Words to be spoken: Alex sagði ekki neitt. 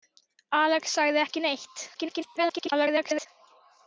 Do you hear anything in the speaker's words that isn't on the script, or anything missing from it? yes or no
yes